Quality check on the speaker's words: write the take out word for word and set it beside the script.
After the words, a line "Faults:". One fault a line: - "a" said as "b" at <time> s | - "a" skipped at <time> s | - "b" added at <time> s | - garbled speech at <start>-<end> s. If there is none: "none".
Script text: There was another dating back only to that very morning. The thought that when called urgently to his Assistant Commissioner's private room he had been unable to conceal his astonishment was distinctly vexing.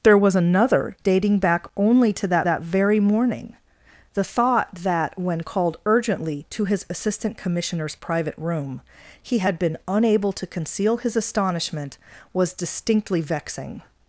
There was another dating back only to that that very morning. The thought that when called urgently to his Assistant Commissioner's private room he had been unable to conceal his astonishment was distinctly vexing.
Faults:
- "that" added at 2.4 s